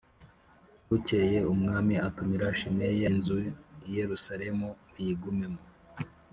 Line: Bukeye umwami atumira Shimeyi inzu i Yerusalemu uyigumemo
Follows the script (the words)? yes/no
yes